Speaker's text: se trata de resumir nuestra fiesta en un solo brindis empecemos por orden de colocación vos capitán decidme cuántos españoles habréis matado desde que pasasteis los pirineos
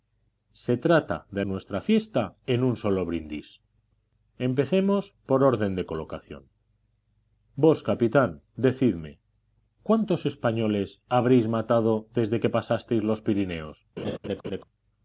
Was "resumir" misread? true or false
true